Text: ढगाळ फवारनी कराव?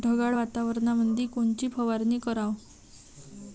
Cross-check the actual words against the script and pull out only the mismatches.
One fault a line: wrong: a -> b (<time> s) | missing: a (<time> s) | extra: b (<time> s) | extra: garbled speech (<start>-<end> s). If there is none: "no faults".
extra: वातावरणामंदी कोनची (0.3 s)